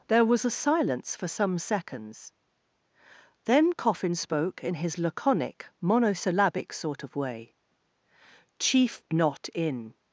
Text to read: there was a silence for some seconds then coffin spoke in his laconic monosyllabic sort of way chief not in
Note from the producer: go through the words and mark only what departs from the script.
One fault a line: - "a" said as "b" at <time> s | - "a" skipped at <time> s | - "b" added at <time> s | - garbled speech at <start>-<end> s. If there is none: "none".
none